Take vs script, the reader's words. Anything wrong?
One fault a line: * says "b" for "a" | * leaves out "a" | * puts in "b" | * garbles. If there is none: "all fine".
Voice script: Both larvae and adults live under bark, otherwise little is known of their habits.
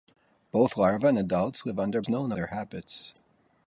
* leaves out "bark otherwise little"
* leaves out "of"